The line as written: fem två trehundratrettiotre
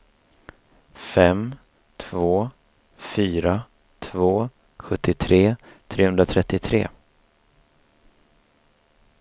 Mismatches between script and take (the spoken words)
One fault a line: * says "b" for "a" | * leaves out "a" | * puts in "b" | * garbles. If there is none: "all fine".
* puts in "fyra två sjuttiotre"